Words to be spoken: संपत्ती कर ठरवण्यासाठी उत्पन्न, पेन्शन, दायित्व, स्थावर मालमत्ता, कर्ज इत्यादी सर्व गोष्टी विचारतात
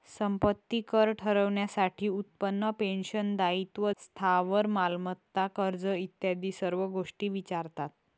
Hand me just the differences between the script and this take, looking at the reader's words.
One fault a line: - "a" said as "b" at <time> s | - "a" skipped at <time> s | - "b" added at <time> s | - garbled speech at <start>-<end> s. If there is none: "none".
none